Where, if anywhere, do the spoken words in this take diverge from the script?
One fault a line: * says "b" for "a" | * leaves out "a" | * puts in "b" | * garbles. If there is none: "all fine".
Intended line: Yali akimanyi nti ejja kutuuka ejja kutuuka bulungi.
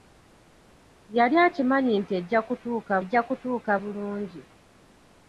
all fine